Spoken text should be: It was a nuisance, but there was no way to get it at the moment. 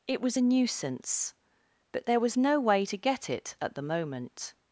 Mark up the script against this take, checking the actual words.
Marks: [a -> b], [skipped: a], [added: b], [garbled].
It was a nuisance, but there was no way to get it at the moment.